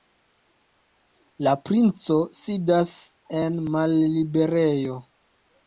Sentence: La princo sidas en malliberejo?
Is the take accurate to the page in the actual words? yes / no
yes